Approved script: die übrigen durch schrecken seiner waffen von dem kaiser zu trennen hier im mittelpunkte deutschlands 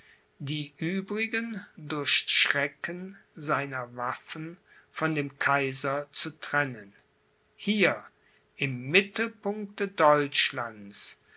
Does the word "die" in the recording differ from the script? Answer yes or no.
no